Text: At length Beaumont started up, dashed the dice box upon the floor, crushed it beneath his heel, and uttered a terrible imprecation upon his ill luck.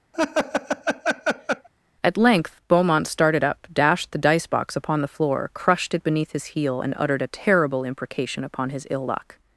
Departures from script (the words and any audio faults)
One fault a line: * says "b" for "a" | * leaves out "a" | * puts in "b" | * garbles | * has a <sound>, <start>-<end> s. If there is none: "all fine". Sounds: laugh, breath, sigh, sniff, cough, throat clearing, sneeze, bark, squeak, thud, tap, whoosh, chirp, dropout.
* has a laugh, 0.1-1.7 s